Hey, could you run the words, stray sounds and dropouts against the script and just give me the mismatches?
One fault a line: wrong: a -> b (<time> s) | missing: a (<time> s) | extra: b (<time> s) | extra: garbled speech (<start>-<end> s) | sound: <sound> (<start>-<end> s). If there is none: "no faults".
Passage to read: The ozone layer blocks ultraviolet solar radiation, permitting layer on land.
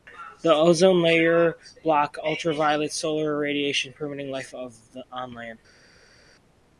wrong: layer -> life (4.3 s)